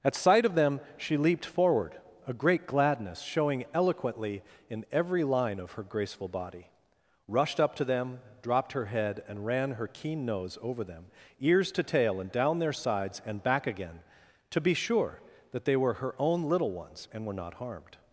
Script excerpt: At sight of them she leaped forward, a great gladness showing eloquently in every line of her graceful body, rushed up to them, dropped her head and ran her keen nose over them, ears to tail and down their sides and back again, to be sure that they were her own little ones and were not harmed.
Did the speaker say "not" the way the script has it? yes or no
yes